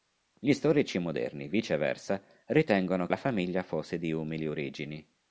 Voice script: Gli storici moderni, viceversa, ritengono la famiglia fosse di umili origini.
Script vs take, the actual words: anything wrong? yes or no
no